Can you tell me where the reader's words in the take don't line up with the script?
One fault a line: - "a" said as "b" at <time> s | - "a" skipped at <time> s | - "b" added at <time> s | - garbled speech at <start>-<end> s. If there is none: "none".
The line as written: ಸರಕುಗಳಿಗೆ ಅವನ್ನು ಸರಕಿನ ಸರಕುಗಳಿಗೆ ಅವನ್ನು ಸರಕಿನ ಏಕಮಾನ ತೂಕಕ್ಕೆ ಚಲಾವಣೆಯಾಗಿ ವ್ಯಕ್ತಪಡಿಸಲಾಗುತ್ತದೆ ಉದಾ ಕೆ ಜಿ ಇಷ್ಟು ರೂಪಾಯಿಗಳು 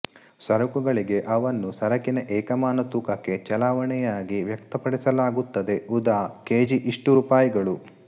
- "ಸರಕುಗಳಿಗೆ ಅವನ್ನು ಸರಕಿನ" skipped at 2.2 s